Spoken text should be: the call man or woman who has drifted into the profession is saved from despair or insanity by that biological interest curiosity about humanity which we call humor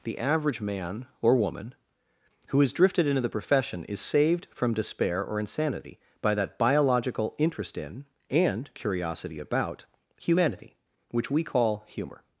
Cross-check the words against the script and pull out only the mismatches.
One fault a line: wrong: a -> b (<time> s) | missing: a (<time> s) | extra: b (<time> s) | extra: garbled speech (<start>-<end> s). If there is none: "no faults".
wrong: call -> average (0.2 s)
extra: in and (7.8 s)